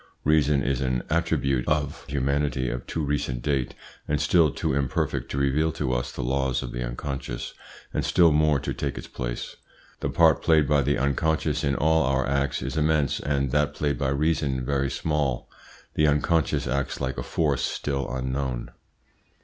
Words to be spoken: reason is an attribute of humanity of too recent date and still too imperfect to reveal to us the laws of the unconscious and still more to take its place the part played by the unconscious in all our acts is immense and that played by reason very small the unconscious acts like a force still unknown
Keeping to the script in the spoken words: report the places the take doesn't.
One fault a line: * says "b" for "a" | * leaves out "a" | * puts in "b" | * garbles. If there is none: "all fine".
all fine